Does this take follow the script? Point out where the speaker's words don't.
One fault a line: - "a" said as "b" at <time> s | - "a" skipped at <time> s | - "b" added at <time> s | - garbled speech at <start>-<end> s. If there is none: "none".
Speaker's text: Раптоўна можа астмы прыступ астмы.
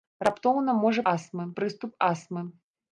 none